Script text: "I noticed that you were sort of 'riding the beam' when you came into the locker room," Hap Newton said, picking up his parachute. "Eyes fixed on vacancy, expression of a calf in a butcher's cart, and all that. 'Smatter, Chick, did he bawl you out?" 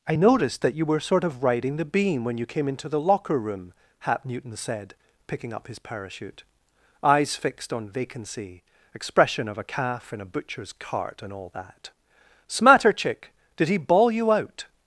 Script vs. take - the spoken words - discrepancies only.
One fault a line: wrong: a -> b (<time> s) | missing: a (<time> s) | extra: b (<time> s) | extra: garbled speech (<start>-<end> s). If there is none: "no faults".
no faults